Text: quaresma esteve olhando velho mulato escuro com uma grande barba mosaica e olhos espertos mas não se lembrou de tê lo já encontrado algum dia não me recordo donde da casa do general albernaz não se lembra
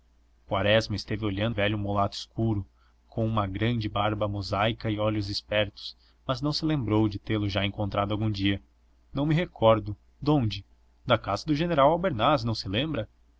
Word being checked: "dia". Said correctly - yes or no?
yes